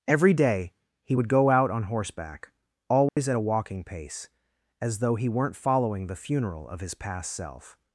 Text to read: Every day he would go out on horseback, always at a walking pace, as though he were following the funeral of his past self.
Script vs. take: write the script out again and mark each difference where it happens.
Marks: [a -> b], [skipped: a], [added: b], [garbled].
Every day he would go out on horseback, always at a walking pace, as though he [were -> weren't] following the funeral of his past self.